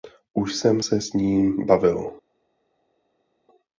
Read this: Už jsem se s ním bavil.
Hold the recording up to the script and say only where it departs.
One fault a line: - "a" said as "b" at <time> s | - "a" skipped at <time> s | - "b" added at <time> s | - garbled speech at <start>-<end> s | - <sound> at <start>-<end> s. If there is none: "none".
none